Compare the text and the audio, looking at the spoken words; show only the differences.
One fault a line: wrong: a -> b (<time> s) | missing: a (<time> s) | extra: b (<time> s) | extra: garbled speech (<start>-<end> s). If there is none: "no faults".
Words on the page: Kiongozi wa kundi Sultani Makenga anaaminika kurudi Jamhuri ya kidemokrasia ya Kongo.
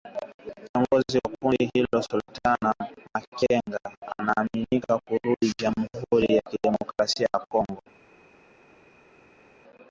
extra: hilo (1.7 s)